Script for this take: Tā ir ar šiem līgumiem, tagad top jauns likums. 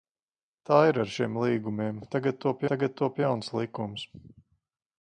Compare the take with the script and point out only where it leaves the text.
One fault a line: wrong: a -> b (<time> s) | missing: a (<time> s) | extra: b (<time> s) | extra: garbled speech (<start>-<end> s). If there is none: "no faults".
extra: tagad top (2.7 s)